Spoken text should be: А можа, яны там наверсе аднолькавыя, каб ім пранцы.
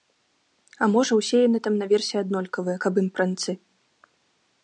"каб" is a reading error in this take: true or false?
false